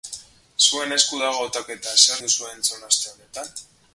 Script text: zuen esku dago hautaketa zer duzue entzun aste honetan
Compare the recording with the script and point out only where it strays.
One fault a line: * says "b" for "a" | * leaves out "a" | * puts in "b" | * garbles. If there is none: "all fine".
all fine